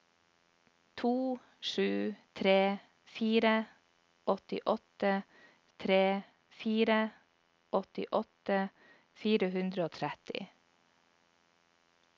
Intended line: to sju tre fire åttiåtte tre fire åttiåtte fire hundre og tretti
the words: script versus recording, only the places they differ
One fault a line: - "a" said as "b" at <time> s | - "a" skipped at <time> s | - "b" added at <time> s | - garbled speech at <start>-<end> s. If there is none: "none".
none